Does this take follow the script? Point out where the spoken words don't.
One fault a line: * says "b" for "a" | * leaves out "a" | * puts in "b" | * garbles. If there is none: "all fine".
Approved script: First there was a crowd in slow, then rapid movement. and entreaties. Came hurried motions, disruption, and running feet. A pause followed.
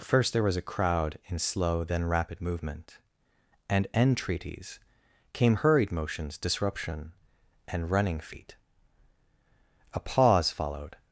all fine